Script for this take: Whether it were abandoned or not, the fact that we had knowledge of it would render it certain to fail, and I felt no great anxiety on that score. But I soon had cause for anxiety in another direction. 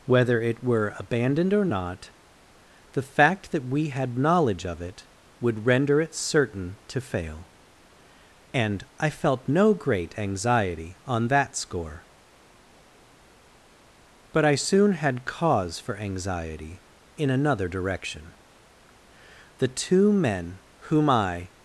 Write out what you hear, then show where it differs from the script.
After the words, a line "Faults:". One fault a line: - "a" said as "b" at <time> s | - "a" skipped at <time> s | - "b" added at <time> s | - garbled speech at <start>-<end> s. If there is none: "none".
Whether it were abandoned or not, the fact that we had knowledge of it would render it certain to fail, and I felt no great anxiety on that score. But I soon had cause for anxiety in another direction. The two men whom I
Faults:
- "The two men whom I" added at 19.6 s